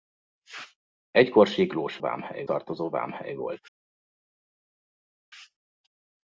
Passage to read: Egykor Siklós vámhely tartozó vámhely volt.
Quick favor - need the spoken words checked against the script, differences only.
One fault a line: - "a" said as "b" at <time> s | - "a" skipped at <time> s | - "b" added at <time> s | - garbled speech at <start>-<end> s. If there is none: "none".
none